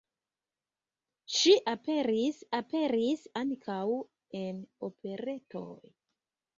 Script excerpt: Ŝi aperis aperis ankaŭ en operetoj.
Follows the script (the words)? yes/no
yes